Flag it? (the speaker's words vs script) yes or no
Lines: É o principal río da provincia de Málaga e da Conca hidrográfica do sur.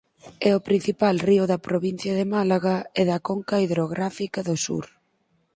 no